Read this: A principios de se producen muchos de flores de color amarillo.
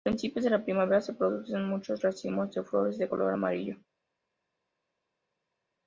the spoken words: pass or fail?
fail